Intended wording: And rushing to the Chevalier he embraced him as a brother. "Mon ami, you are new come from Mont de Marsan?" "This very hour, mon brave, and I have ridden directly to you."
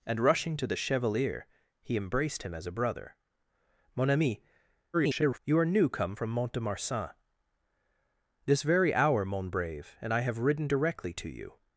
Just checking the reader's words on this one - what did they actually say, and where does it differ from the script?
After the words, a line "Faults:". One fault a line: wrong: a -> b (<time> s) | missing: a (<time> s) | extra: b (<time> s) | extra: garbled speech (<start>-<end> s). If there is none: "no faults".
And rushing to the Chevalier he embraced him as a brother. "Mon ami, [garbled] you are new come from Mont de Marsan?" "This very hour, mon brave, and I have ridden directly to you."
Faults:
extra: garbled speech (4.9-5.4 s)